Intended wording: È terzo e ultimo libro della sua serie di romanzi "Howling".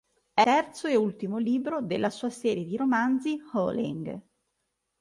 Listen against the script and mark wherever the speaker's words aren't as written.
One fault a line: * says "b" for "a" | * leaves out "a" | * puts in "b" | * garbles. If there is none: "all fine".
all fine